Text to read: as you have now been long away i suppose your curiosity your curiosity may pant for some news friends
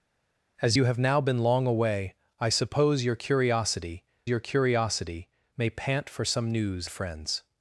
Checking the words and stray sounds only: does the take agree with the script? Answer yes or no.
yes